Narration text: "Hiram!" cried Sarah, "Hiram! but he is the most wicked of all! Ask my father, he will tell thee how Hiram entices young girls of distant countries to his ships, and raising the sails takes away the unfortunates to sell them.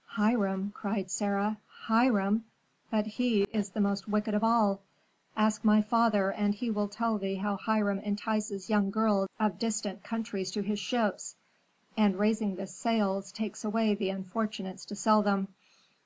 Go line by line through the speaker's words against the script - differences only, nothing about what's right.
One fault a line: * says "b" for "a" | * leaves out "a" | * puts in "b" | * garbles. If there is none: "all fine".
* puts in "and"